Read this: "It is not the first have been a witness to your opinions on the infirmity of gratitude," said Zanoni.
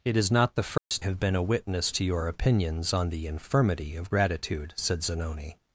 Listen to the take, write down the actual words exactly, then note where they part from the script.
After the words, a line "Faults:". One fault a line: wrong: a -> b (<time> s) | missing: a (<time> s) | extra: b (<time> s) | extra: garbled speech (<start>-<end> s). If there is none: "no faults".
"It is not the first have been a witness to your opinions on the infirmity of gratitude," said Zanoni.
Faults:
no faults